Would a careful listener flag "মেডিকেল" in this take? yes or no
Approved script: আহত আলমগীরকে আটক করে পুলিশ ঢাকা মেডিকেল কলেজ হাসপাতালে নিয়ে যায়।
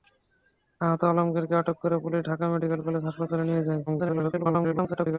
no